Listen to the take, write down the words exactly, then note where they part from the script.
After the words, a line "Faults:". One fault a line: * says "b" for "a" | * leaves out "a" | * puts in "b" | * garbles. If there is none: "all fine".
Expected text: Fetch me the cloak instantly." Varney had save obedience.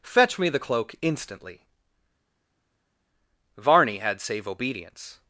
Fetch me the cloak instantly." Varney had save obedience.
Faults:
all fine